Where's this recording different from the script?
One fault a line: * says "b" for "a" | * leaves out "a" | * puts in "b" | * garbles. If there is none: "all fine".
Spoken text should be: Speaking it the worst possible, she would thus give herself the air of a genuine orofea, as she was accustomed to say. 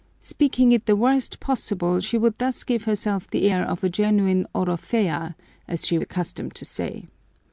* leaves out "was"